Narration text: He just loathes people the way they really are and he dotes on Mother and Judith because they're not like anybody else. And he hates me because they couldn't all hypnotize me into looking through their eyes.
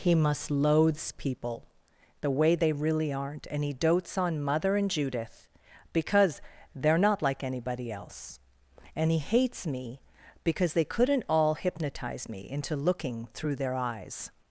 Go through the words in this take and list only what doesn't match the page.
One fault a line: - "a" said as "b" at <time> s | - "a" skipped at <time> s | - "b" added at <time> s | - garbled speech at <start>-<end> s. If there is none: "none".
- "just" said as "must" at 0.1 s
- "are" said as "aren't" at 3.1 s